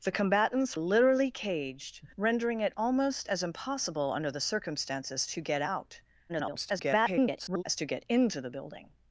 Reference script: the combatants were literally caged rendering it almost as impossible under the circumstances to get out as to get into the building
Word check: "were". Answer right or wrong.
wrong